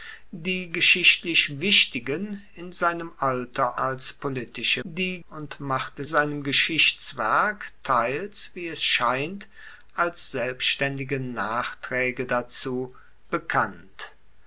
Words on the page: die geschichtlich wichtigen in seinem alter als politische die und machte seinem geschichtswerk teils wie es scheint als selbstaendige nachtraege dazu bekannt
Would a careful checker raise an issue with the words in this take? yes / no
no